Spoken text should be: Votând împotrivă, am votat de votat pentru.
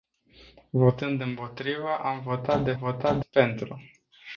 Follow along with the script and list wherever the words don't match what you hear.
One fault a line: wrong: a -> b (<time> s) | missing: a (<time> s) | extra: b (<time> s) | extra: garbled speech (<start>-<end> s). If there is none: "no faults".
no faults